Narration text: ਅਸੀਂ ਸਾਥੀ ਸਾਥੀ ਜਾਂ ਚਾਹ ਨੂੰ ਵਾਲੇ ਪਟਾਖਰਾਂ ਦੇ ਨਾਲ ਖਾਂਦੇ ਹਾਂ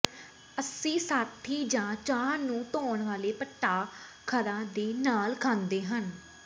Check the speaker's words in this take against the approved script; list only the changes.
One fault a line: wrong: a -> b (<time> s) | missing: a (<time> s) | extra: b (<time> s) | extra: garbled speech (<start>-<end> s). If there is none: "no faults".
missing: ਸਾਥੀ (1.6 s)
extra: ਧੋਣ (2.7 s)